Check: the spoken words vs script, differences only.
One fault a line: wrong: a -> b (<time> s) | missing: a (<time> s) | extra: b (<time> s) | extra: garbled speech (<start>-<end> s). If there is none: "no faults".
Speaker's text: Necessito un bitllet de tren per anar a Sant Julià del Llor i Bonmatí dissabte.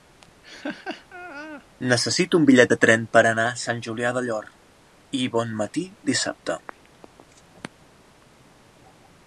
no faults